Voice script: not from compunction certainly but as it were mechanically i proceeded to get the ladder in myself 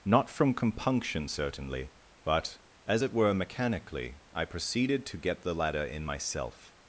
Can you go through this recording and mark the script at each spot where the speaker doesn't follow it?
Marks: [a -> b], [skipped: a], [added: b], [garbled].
not from compunction certainly but as it were mechanically i proceeded to get the ladder in myself